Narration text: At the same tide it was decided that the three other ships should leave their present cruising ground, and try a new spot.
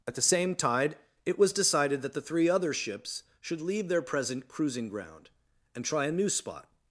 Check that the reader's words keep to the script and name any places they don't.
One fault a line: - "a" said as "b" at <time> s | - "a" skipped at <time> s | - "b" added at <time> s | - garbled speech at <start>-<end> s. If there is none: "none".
none